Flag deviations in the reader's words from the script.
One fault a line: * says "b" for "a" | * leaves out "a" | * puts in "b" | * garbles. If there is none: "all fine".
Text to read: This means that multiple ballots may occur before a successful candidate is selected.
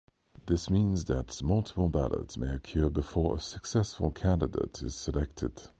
all fine